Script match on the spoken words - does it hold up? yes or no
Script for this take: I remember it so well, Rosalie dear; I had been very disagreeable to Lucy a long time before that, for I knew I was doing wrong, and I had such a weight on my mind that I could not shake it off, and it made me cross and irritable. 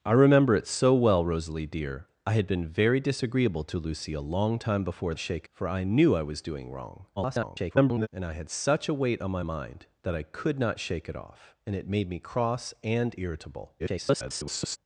no